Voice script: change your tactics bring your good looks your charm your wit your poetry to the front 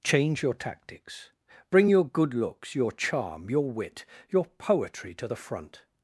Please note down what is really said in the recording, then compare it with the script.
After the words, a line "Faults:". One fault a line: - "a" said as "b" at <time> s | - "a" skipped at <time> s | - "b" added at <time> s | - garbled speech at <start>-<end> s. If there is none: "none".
change your tactics bring your good looks your charm your wit your poetry to the front
Faults:
none